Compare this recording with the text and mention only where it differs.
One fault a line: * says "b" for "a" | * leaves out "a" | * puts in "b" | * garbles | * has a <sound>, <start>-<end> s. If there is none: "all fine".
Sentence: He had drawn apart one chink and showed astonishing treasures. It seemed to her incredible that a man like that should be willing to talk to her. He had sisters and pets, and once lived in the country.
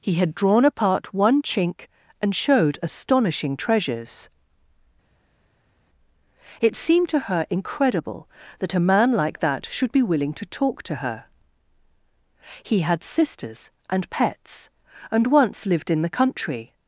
all fine